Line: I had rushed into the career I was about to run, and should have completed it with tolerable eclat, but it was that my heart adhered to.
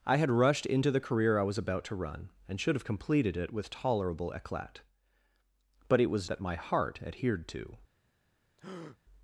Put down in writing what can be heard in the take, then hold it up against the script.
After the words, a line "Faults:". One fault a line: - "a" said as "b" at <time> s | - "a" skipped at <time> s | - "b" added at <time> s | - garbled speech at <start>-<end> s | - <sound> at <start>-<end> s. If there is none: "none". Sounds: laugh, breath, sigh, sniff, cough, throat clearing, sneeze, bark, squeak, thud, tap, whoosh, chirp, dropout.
I had rushed into the career I was about to run, and should have completed it with tolerable eclat, but it was that my heart adhered to.
Faults:
- breath at 8.6-9.0 s